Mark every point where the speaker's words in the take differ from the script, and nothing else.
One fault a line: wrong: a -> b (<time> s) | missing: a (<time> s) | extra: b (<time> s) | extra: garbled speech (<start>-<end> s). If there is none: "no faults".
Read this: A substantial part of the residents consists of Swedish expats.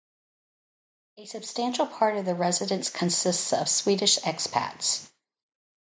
no faults